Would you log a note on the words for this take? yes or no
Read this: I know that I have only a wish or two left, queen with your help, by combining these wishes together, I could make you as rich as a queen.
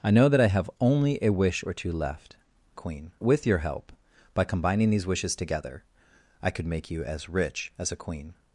no